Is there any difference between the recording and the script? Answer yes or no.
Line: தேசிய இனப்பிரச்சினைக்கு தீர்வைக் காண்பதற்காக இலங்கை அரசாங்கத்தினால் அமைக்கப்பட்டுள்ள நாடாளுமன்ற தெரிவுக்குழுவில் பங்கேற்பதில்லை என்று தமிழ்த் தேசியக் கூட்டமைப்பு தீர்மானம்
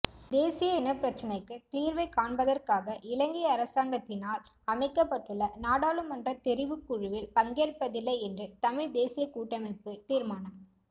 no